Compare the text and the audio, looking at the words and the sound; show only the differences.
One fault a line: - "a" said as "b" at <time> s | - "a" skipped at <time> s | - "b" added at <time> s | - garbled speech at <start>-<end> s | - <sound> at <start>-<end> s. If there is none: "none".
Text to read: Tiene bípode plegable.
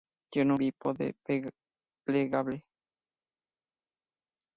none